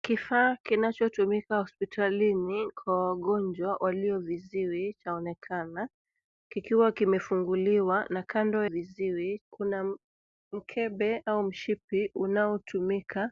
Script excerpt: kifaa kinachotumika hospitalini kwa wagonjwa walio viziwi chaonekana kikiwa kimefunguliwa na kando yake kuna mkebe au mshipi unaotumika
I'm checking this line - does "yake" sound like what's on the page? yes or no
no